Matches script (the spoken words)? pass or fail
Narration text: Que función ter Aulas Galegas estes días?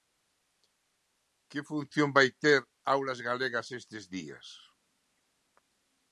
fail